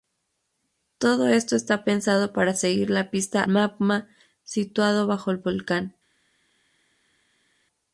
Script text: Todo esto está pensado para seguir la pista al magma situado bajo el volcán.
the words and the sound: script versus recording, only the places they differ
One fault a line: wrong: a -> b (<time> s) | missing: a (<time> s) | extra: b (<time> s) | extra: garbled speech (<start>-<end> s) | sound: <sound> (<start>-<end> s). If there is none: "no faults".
missing: al (3.4 s)